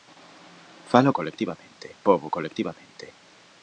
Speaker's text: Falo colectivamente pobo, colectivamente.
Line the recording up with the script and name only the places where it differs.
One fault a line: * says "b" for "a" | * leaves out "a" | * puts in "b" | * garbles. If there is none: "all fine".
all fine